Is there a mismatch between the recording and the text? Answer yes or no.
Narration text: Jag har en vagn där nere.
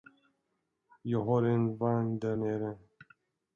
no